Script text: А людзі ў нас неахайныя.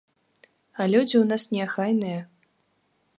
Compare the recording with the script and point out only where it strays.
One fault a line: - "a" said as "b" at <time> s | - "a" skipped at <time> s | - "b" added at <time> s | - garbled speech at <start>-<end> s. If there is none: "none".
none